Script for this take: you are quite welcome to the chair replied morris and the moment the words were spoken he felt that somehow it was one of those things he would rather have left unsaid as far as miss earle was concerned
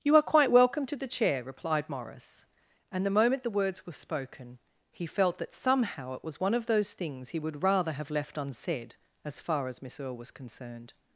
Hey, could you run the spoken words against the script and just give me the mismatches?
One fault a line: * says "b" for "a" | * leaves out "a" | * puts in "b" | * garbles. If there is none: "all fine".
all fine